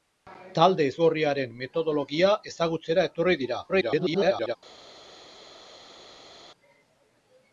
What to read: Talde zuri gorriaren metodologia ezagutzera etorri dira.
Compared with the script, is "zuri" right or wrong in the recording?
wrong